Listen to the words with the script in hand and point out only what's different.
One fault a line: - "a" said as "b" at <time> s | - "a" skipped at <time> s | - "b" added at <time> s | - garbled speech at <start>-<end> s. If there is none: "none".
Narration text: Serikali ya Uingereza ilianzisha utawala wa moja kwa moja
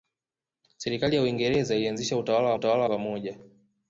- "moja" said as "utawala" at 2.5 s